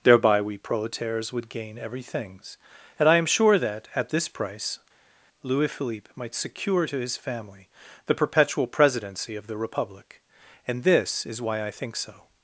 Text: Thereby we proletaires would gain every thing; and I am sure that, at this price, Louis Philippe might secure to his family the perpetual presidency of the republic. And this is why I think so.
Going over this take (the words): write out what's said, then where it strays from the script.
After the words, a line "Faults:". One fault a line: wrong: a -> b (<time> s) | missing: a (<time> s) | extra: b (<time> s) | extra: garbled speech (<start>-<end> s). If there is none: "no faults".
Thereby we proletaires would gain every things; and I am sure that, at this price, Louis Philippe might secure to his family the perpetual presidency of the republic. And this is why I think so.
Faults:
wrong: thing -> things (2.0 s)